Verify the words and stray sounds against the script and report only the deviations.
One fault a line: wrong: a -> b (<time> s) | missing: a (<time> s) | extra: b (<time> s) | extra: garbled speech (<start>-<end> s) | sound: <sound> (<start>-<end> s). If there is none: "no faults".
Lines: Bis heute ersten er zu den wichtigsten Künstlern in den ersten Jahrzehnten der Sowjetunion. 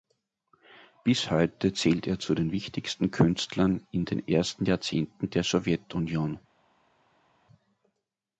wrong: ersten -> zählt (1.7 s)